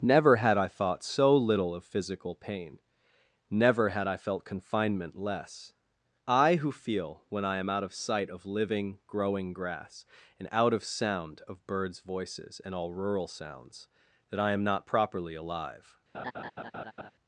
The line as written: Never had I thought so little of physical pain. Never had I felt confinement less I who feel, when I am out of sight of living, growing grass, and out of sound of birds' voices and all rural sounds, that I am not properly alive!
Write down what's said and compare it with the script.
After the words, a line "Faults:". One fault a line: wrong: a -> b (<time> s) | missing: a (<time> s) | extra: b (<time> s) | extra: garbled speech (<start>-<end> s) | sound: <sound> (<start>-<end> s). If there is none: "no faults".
Never had I thought so little of physical pain. Never had I felt confinement less I who feel, when I am out of sight of living, growing grass, and out of sound of birds' voices and all rural sounds, that I am not properly alive!
Faults:
sound: laugh (16.1-17.1 s)